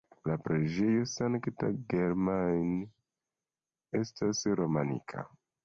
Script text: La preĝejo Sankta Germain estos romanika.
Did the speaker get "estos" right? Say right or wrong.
wrong